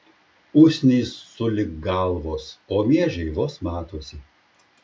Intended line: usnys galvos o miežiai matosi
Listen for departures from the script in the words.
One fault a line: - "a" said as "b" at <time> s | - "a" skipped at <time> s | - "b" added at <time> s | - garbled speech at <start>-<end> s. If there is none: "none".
- "sulig" added at 1.3 s
- "vos" added at 3.4 s